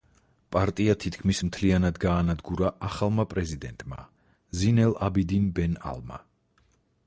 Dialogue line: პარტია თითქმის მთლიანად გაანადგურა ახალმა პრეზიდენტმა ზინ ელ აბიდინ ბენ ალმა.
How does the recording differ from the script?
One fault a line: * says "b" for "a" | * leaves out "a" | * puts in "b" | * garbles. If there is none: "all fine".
all fine